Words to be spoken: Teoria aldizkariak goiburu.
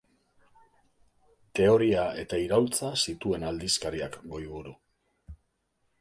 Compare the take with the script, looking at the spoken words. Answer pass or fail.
fail